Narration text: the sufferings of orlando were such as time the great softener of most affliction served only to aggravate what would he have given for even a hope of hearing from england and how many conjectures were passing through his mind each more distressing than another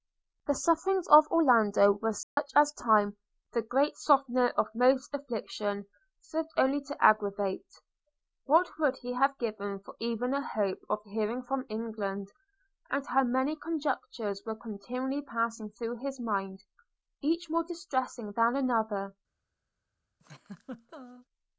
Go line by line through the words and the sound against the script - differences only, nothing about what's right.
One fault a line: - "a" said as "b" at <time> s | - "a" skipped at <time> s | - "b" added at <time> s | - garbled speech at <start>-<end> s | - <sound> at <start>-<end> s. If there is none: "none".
- dropout at 2.2-2.4 s
- "continually" added at 14.6 s
- laugh at 20.2-21.3 s